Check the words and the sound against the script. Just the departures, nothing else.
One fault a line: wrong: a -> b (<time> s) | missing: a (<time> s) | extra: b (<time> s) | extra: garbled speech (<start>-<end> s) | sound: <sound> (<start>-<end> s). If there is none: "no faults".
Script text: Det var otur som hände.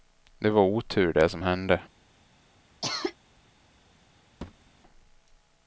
extra: det (1.1 s)
sound: cough (2.8-3.2 s)
sound: thud (4.4-4.7 s)